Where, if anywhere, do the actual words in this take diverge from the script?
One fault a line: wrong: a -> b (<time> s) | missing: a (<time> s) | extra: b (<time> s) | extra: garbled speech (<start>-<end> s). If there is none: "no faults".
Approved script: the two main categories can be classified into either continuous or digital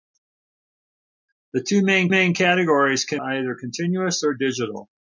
extra: main (2.1 s)
missing: be classified into (3.2 s)